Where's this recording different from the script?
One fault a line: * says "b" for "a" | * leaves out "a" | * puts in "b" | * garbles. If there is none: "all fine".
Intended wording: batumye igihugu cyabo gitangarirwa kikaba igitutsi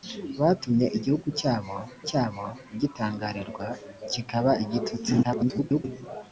* puts in "cyabo"
* garbles